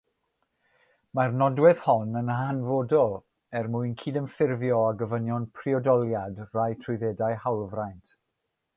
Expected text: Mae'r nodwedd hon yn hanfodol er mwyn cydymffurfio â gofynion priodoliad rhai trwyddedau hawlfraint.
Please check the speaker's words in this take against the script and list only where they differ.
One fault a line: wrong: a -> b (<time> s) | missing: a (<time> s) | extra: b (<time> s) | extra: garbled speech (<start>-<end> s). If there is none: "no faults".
no faults